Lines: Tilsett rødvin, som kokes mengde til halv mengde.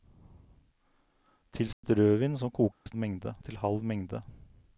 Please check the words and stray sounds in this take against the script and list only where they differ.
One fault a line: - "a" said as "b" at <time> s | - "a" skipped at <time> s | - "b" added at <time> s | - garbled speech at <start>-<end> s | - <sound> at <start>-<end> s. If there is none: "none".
- dropout at 1.7-1.8 s
- dropout at 2.7-2.9 s